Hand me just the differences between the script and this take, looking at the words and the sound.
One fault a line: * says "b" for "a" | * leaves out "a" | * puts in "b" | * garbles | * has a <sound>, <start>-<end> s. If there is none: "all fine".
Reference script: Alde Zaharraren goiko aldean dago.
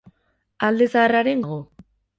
* leaves out "goiko aldean"